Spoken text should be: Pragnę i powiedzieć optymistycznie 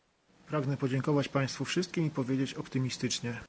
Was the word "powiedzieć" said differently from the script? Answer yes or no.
no